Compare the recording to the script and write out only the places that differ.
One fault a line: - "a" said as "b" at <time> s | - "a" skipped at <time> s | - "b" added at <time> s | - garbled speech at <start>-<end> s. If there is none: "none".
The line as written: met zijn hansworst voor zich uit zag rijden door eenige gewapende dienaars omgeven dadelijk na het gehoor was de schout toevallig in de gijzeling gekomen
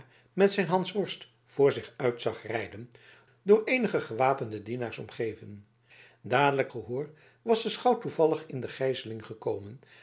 - "na het" skipped at 6.7 s